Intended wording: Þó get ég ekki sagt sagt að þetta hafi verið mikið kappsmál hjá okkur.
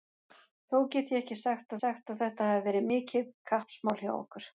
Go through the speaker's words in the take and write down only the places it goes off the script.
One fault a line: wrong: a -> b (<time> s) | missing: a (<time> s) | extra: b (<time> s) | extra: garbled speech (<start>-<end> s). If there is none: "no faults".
no faults